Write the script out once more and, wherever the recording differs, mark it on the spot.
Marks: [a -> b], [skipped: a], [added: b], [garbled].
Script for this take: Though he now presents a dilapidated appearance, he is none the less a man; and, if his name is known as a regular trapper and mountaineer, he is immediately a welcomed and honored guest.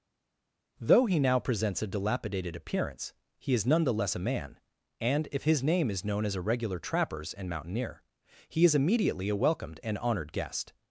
Though he now presents a dilapidated appearance, he is none the less a man; and, if his name is known as a regular [trapper -> trappers] and mountaineer, he is immediately a welcomed and honored guest.